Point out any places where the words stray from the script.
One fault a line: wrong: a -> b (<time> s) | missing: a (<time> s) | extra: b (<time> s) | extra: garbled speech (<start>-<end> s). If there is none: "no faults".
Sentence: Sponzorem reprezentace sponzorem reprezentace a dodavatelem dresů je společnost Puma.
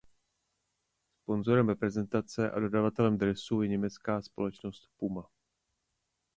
missing: sponzorem reprezentace (2.5 s)
extra: německá (3.7 s)